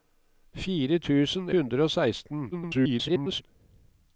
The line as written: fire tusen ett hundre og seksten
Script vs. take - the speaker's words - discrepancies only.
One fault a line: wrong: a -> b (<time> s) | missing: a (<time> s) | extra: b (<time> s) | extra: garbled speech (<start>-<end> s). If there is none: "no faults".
missing: ett (1.5 s)
extra: garbled speech (2.5-3.4 s)